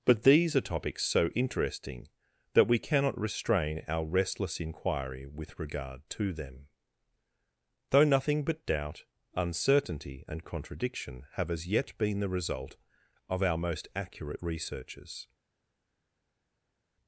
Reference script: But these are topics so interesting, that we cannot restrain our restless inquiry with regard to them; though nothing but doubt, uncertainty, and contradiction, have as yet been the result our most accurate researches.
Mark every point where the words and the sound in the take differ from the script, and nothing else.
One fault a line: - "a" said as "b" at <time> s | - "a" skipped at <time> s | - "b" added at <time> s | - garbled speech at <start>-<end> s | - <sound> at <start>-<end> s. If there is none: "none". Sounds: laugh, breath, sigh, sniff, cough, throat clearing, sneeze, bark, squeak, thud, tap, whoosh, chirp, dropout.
- "of" added at 13.3 s